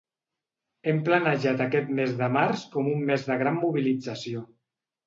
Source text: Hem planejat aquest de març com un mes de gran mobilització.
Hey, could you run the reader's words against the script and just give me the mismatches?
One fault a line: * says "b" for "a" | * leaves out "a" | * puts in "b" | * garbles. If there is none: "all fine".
* puts in "mes"